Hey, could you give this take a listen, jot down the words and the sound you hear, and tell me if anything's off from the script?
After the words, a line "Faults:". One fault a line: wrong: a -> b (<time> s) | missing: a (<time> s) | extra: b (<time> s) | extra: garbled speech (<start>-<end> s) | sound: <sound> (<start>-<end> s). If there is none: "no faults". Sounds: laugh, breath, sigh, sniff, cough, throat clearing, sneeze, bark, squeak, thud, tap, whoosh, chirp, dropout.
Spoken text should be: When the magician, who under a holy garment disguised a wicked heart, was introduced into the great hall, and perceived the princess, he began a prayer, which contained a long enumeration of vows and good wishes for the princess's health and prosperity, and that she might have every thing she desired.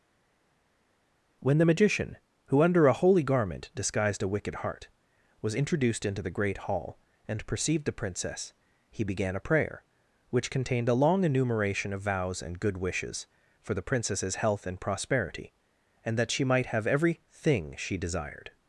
When the magician, who under a holy garment disguised a wicked heart, was introduced into the great hall, and perceived the princess, he began a prayer, which contained a long enumeration of vows and good wishes for the princess's health and prosperity, and that she might have every thing she desired.
Faults:
no faults